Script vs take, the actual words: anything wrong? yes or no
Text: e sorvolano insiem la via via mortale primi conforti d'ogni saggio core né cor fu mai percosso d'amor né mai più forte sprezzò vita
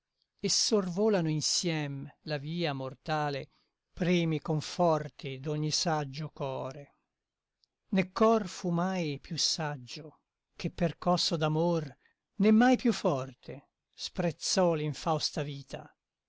yes